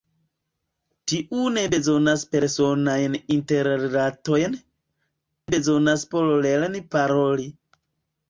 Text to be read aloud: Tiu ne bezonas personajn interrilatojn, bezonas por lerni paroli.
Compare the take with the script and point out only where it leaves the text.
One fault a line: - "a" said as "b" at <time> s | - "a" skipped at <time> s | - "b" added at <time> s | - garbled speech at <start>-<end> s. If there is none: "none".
none